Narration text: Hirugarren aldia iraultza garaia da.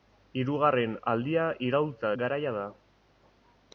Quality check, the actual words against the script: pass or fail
pass